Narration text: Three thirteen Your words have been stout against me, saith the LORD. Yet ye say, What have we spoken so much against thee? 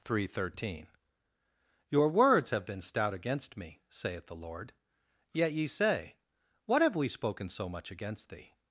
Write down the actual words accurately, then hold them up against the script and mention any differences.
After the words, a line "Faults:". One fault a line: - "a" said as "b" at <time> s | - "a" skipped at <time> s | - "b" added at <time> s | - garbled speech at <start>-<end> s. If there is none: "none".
Three thirteen Your words have been stout against me, saith the LORD. Yet ye say, What have we spoken so much against thee?
Faults:
none